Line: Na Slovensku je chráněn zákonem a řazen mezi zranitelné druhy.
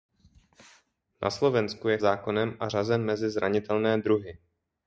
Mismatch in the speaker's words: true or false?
true